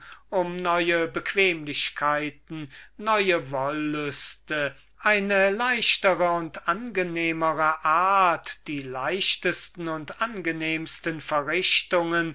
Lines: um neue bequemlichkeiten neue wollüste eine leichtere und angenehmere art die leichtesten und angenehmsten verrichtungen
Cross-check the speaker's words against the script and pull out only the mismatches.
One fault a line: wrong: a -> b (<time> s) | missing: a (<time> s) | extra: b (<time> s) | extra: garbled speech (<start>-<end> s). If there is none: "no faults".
no faults